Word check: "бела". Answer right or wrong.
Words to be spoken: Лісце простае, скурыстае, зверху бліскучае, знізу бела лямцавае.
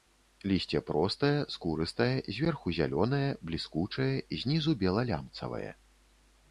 right